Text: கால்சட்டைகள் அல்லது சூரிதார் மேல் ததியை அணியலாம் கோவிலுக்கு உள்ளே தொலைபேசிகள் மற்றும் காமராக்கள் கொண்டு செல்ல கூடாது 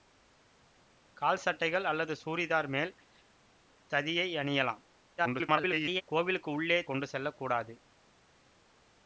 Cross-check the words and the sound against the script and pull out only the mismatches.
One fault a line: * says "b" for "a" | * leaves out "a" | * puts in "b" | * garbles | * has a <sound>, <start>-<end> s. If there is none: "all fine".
* garbles
* leaves out "தொலைபேசிகள் மற்றும் காமராக்கள்"